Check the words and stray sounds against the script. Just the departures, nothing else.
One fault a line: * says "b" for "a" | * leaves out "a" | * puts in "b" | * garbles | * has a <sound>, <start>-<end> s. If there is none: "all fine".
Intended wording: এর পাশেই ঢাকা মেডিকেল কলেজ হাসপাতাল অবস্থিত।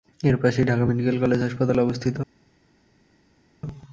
all fine